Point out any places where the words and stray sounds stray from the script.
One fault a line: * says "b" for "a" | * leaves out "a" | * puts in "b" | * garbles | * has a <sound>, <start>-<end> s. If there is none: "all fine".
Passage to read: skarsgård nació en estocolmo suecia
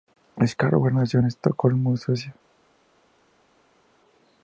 all fine